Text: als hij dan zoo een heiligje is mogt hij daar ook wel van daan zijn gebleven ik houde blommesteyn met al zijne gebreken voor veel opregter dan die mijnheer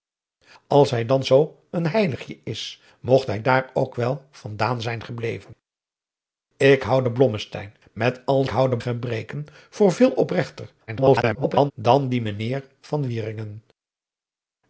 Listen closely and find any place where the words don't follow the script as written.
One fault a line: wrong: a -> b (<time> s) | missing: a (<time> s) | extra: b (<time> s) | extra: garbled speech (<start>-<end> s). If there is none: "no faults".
wrong: zijne -> houde (8.5 s)
extra: garbled speech (10.9-11.7 s)